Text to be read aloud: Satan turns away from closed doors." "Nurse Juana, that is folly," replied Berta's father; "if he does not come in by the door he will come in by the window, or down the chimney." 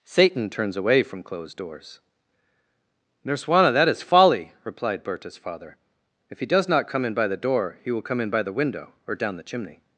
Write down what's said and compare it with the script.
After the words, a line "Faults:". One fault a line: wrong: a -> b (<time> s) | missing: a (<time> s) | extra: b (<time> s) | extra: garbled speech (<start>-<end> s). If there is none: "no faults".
Satan turns away from closed doors." "Nurse Juana, that is folly," replied Berta's father; "if he does not come in by the door he will come in by the window, or down the chimney."
Faults:
no faults